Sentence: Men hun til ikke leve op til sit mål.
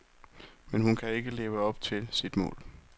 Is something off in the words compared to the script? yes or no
yes